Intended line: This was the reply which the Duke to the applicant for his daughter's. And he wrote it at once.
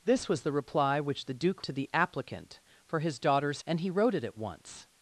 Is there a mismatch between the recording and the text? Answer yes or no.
no